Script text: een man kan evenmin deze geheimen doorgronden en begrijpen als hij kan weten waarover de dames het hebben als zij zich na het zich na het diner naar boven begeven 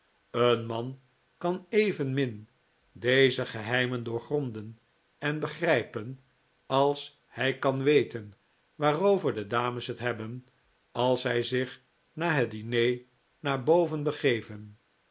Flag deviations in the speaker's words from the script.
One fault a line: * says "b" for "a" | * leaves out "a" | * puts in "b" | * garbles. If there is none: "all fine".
* leaves out "zich na het"